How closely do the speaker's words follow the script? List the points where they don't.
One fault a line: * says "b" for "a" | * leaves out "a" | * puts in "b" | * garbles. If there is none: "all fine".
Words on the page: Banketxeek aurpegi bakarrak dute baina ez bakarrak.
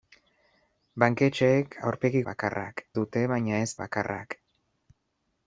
all fine